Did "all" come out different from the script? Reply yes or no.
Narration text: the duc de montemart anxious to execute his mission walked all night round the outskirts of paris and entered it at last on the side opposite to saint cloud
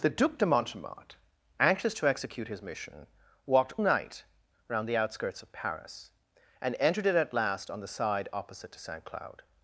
yes